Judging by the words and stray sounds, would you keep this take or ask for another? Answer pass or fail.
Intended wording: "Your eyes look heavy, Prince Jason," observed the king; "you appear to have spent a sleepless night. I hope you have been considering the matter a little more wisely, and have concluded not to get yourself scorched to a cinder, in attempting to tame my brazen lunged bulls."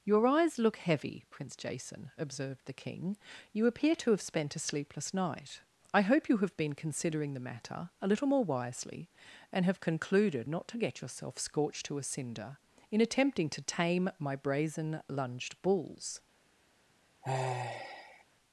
fail